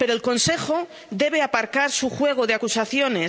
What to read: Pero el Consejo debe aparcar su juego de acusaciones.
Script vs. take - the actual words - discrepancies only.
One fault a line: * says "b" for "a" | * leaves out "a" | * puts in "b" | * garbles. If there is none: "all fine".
all fine